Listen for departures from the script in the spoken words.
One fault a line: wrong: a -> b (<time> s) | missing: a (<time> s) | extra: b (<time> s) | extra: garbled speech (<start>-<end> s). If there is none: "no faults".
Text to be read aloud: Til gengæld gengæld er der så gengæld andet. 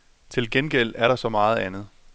missing: gengæld (0.9 s)
wrong: gengæld -> meget (1.3 s)